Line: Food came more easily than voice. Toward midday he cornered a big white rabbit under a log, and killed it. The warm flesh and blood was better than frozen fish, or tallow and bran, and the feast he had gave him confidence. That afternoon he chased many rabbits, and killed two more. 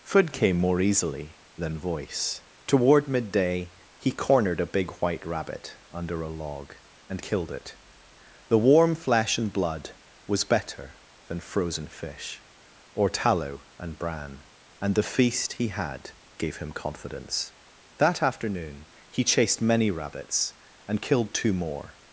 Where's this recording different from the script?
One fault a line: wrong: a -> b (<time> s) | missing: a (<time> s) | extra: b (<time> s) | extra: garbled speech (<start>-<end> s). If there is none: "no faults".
no faults